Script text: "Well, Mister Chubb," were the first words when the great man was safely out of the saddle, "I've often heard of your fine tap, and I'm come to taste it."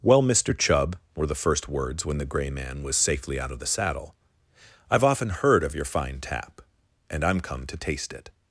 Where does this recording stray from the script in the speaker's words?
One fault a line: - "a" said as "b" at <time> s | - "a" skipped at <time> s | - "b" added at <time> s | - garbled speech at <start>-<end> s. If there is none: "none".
- "great" said as "grey" at 2.2 s